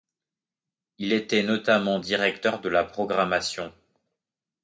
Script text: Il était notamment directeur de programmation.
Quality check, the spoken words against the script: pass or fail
fail